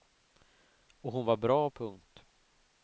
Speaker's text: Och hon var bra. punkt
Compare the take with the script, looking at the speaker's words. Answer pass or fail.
pass